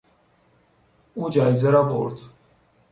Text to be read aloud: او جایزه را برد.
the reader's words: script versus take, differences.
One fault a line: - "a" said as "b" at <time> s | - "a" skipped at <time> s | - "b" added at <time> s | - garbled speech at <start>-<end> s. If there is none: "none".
none